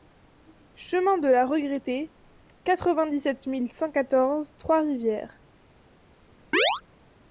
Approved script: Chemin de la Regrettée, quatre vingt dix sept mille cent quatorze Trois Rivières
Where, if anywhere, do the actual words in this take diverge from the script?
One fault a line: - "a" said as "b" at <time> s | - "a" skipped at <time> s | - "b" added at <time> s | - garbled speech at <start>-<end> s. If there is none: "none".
none